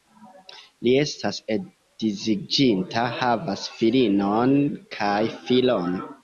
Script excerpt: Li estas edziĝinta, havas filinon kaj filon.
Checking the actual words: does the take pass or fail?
pass